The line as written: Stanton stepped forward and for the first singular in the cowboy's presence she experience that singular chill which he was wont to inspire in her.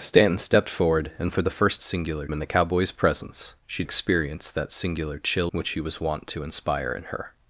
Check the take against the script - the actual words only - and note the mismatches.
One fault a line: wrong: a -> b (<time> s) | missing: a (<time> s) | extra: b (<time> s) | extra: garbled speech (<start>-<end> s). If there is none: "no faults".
no faults